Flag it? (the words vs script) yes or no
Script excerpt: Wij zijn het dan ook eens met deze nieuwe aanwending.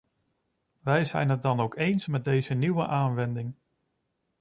no